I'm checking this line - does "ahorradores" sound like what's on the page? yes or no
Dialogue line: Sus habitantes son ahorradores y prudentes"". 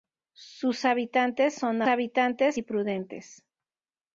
no